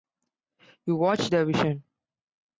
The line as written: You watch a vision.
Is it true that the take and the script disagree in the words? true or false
true